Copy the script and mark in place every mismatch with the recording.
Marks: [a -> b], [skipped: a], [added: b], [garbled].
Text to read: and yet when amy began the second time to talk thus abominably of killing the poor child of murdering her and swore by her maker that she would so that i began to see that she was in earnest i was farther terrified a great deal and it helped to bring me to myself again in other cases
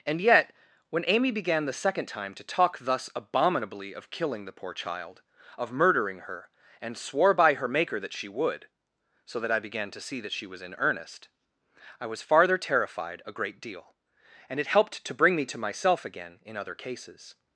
and yet when amy began the second time to talk thus abominably of killing the poor child of murdering her and swore by her maker that she would so that i began to see that she was in earnest i was farther terrified a great deal and it helped to bring me to myself again in other cases